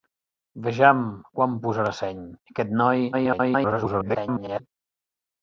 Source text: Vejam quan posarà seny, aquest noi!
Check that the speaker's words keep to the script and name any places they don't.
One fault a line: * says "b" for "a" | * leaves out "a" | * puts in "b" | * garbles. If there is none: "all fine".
* garbles